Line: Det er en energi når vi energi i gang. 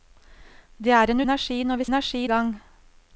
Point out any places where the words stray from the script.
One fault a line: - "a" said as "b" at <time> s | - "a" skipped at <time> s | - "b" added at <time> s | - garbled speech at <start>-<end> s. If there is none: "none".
none